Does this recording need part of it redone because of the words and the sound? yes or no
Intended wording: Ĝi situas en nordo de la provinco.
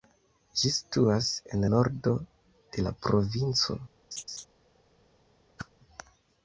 yes